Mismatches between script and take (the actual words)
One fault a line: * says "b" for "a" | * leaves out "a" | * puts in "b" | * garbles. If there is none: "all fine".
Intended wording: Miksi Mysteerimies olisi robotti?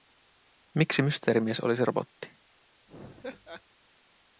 all fine